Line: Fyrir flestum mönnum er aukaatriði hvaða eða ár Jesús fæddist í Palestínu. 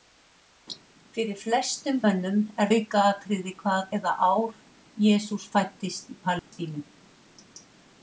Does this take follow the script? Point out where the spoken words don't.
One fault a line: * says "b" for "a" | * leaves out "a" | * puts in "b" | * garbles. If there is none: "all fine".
all fine